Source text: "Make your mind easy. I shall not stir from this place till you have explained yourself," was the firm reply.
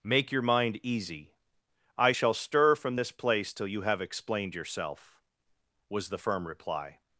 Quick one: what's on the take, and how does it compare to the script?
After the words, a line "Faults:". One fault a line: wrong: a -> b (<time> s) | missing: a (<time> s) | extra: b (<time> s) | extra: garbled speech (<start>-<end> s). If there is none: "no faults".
"Make your mind easy. I shall stir from this place till you have explained yourself," was the firm reply.
Faults:
missing: not (2.3 s)